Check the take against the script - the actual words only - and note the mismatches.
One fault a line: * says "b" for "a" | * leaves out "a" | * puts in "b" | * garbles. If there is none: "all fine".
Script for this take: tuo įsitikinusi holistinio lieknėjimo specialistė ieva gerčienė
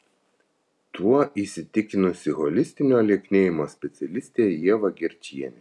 all fine